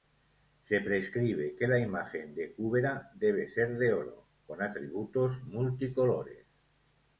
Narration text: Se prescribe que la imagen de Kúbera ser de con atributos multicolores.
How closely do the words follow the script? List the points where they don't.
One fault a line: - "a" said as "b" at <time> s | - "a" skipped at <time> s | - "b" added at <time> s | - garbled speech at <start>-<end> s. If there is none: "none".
- "debe" added at 3.1 s
- "oro" added at 3.9 s